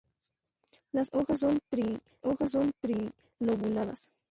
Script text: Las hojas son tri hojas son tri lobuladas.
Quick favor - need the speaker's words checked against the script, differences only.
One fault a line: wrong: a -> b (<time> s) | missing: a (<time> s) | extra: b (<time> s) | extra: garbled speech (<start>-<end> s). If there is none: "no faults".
no faults